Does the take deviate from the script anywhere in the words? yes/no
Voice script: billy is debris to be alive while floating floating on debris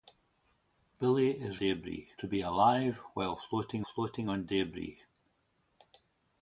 no